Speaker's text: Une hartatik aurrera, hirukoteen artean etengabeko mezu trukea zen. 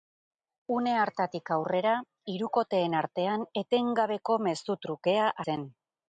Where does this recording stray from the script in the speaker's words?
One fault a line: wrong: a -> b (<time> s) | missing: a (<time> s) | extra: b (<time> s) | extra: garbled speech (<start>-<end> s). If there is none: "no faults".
no faults